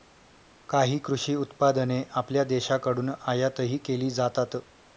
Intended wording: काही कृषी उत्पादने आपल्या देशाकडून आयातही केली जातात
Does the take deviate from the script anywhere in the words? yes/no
no